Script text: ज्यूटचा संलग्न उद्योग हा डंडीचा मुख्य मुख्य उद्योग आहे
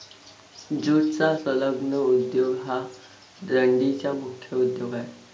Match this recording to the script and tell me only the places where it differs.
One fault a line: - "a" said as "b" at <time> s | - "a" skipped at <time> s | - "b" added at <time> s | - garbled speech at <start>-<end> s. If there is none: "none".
- "मुख्य" skipped at 4.6 s